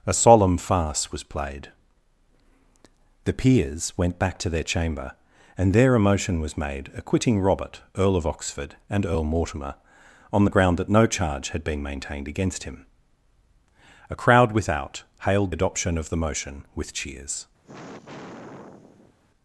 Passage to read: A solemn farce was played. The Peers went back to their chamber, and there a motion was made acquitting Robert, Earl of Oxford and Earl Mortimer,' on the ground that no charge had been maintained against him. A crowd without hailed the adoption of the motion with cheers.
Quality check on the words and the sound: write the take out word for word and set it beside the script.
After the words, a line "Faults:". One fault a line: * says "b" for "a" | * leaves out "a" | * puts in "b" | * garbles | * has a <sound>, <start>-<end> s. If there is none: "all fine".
A solemn farce was played. The Peers went back to their chamber, and there a motion was made acquitting Robert, Earl of Oxford and Earl Mortimer,' on the ground that no charge had been maintained against him. A crowd without hailed adoption of the motion with cheers.
Faults:
* leaves out "the"
* has a sigh, 17.6-19.1 s